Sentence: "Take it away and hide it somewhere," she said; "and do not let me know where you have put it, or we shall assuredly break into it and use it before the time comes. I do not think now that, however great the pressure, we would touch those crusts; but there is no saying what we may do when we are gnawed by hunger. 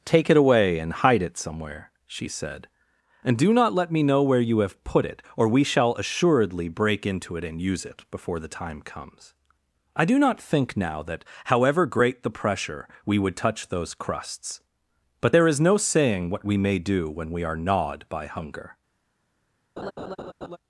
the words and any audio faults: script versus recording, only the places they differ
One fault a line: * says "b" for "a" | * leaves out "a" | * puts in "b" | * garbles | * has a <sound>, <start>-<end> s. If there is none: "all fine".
* has a laugh, 19.8-20.6 s